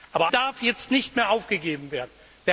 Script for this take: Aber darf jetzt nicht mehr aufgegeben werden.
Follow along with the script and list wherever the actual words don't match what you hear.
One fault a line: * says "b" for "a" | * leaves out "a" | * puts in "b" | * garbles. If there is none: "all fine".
all fine